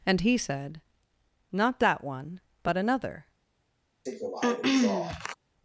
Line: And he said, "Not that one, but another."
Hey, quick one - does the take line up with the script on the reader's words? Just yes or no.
yes